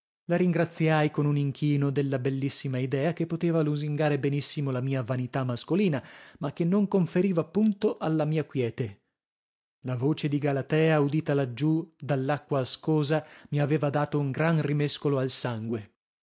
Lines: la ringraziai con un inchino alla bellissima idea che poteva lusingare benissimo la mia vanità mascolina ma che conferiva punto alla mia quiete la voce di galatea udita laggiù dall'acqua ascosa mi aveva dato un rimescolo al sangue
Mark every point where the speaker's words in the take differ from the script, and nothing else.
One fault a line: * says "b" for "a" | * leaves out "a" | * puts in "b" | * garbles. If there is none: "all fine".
* says "della" for "alla"
* puts in "non"
* puts in "gran"